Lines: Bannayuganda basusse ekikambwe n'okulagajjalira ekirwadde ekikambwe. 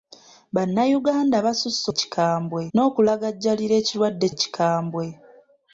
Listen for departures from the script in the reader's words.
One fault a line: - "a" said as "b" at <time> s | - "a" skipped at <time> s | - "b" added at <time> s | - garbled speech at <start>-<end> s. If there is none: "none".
none